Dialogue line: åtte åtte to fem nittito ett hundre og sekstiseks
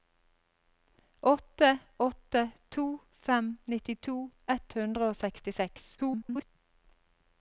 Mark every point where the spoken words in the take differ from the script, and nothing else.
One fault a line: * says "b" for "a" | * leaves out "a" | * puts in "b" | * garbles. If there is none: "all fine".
* garbles